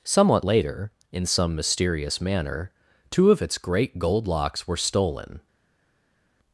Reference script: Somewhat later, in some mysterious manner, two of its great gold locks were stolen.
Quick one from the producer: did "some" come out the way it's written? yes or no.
yes